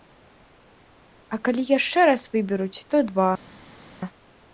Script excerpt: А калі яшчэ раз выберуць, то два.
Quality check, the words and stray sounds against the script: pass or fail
pass